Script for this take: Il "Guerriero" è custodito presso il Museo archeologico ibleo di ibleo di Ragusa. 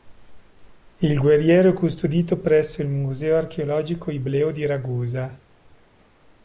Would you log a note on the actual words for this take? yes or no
yes